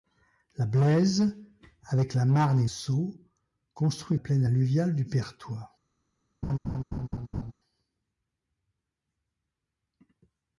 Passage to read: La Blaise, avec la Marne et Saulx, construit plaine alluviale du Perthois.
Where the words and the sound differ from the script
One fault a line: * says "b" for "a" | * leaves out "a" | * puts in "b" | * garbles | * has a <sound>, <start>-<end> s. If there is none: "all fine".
* has a laugh, 6.4-7.5 s